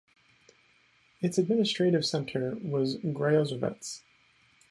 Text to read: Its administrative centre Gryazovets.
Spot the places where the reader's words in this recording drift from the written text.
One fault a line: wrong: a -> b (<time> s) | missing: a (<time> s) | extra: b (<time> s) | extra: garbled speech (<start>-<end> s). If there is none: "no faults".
extra: was (2.6 s)